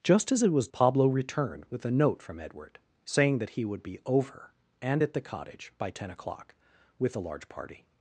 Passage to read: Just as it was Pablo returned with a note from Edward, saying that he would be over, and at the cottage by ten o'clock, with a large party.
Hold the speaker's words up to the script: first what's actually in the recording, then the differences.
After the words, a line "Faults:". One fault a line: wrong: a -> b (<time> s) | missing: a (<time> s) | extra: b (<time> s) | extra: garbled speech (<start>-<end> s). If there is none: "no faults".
Just as it was Pablo returned with a note from Edward, saying that he would be over, and at the cottage by ten o'clock, with a large party.
Faults:
no faults